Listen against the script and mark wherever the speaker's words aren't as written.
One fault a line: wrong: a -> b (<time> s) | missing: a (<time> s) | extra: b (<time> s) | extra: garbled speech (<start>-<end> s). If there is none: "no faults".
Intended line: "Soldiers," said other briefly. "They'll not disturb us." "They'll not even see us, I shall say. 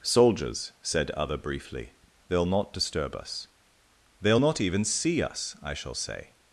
no faults